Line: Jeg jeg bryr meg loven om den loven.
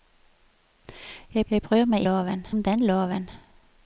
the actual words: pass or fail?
pass